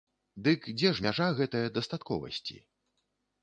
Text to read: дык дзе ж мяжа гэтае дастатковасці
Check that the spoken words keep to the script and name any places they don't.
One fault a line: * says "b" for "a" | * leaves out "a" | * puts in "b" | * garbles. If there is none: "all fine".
all fine